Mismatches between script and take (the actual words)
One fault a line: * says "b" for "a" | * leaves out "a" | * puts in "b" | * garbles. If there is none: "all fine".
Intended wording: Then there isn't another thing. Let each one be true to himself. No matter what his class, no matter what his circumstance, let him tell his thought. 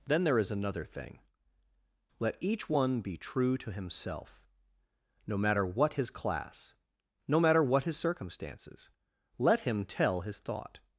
* says "is" for "isn't"
* says "circumstances" for "circumstance"